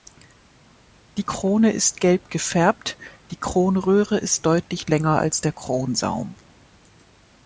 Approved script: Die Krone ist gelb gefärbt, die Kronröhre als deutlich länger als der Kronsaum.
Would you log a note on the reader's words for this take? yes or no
yes